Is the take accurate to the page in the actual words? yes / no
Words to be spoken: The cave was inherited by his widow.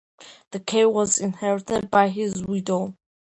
yes